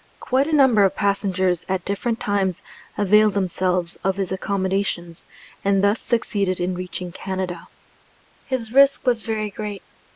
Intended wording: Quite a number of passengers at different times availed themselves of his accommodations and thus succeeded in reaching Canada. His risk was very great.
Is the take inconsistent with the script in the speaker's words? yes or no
no